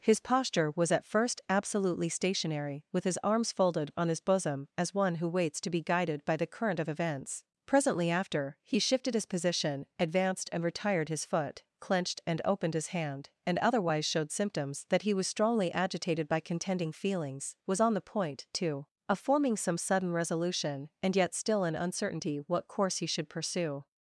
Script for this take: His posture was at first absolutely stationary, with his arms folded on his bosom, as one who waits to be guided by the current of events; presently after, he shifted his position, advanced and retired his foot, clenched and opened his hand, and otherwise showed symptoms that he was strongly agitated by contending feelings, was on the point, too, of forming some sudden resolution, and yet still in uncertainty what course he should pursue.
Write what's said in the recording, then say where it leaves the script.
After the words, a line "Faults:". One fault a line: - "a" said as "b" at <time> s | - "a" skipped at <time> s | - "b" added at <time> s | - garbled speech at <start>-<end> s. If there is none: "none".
His posture was at first absolutely stationary, with his arms folded on his bosom, as one who waits to be guided by the current of events; presently after, he shifted his position, advanced and retired his foot, clenched and opened his hand, and otherwise showed symptoms that he was strongly agitated by contending feelings, was on the point, too, of forming some sudden resolution, and yet still in uncertainty what course he should pursue.
Faults:
none